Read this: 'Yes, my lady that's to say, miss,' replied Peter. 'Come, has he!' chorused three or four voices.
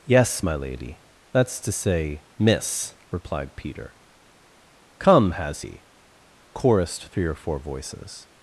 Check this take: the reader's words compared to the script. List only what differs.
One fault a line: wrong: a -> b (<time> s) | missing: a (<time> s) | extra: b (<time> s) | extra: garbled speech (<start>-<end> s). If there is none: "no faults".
no faults